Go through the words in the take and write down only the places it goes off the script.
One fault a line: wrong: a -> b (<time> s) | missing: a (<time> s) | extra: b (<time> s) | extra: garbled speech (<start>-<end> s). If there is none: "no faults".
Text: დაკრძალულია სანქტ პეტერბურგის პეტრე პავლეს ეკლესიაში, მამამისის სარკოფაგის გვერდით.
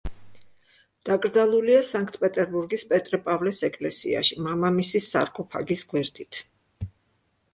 no faults